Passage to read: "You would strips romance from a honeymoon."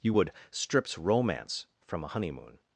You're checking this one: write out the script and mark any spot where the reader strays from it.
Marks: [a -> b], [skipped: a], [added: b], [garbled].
"You would strips romance from a honeymoon."